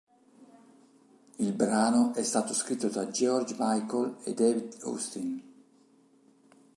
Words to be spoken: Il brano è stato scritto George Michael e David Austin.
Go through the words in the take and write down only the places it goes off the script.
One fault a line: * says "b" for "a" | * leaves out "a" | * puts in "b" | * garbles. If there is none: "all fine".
* puts in "da"